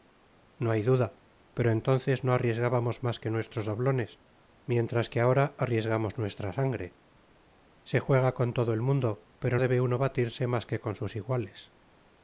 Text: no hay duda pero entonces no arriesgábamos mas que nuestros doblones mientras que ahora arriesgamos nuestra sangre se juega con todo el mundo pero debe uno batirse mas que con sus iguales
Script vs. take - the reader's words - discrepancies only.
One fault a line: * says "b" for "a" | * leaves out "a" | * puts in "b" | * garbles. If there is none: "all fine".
all fine